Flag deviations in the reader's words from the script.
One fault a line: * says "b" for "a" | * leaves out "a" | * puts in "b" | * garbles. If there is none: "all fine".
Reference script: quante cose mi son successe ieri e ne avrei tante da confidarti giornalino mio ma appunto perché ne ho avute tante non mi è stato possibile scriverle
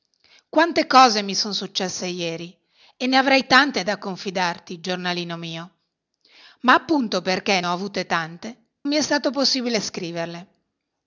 * leaves out "ne"
* leaves out "non"